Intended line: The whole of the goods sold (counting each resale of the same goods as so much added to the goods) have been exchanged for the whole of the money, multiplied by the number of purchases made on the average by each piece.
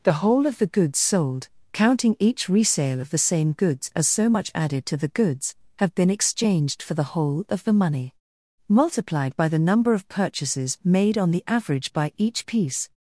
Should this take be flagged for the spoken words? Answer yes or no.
no